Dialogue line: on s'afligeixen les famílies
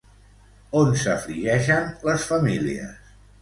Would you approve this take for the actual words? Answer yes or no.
yes